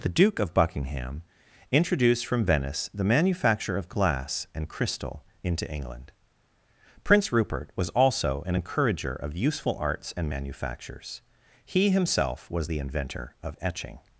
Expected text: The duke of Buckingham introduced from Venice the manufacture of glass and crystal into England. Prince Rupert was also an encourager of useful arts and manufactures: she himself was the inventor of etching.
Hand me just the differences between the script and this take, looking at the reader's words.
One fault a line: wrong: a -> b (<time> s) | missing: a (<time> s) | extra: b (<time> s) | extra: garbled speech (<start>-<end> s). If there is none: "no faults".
wrong: she -> he (11.7 s)